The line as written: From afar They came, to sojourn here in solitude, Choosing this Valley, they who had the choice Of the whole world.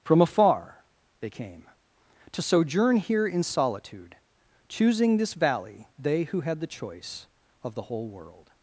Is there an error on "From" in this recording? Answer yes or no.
no